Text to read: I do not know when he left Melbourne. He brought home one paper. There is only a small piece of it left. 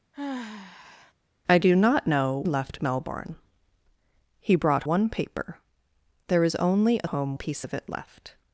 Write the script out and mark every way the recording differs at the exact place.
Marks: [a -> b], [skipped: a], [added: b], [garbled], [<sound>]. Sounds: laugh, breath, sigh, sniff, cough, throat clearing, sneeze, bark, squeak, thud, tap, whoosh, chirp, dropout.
[sigh] I do not know [skipped: when he] left Melbourne. He brought [skipped: home] one paper. There is only a [small -> home] piece of it left.